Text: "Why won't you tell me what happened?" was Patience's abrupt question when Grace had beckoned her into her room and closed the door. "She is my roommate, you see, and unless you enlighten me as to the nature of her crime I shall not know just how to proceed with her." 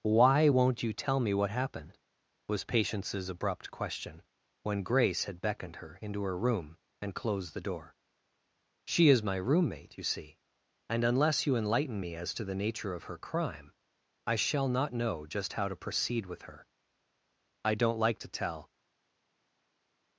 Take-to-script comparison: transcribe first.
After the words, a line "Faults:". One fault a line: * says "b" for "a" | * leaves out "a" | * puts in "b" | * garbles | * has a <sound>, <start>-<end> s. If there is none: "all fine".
"Why won't you tell me what happened?" was Patience's abrupt question when Grace had beckoned her into her room and closed the door. "She is my roommate, you see, and unless you enlighten me as to the nature of her crime I shall not know just how to proceed with her." "I don't like to tell
Faults:
* puts in "I don't like to tell"